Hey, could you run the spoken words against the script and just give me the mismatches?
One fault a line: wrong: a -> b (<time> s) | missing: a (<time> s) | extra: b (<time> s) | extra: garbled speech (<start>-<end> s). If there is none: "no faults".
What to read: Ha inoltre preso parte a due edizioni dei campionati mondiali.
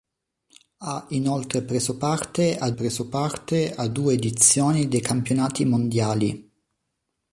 extra: preso parte a (2.7 s)